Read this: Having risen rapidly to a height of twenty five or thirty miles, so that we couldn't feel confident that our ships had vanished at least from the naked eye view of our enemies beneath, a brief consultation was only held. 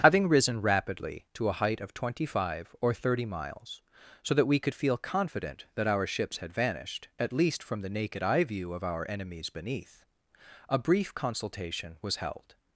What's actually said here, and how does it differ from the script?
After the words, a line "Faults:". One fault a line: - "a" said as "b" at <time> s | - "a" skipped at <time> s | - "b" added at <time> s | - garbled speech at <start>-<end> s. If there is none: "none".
Having risen rapidly to a height of twenty five or thirty miles, so that we could feel confident that our ships had vanished at least from the naked eye view of our enemies beneath, a brief consultation was held.
Faults:
- "couldn't" said as "could" at 4.6 s
- "only" skipped at 12.2 s